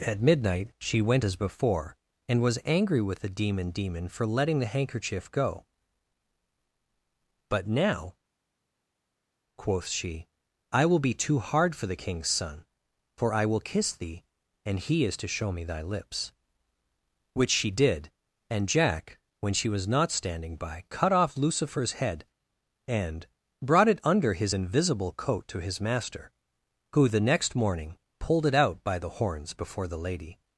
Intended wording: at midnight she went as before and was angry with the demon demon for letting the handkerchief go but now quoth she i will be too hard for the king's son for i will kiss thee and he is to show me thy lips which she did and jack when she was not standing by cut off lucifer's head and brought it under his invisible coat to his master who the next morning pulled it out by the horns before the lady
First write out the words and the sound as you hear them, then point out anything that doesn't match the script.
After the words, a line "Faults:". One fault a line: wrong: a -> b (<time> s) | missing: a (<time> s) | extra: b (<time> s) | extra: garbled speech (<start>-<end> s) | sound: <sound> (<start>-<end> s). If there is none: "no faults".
at midnight she went as before and was angry with the demon demon for letting the handkerchief go but now quoth she i will be too hard for the king's son for i will kiss thee and he is to show me thy lips which she did and jack when she was not standing by cut off lucifer's head and brought it under his invisible coat to his master who the next morning pulled it out by the horns before the lady
Faults:
no faults